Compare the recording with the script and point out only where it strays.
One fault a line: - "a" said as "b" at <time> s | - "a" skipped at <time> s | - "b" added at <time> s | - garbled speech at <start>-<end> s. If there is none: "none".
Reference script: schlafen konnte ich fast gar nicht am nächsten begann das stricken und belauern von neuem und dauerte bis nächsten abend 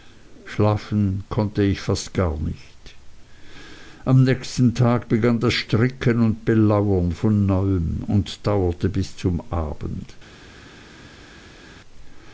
- "tag" added at 4.7 s
- "nächsten" said as "zum" at 9.2 s